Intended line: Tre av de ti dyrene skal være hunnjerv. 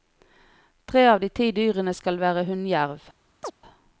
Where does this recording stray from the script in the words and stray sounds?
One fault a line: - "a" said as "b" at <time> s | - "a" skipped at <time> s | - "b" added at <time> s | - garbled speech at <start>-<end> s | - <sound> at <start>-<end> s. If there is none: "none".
- chirp at 3.4-3.5 s